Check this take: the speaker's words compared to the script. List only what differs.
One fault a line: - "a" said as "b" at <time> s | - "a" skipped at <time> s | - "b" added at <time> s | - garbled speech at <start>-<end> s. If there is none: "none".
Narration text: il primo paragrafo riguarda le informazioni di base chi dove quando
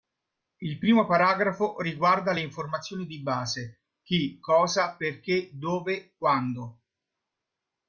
- "cosa perché" added at 4.4 s